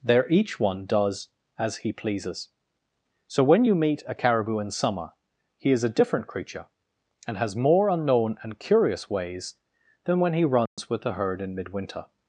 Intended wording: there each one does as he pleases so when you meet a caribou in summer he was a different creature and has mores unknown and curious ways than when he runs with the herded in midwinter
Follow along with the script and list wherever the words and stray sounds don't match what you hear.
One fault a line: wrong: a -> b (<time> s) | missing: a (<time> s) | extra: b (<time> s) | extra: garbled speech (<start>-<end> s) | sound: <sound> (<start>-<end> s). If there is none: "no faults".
wrong: was -> is (5.7 s)
wrong: mores -> more (7.5 s)
sound: dropout (10.7-10.8 s)
wrong: herded -> herd (11.1 s)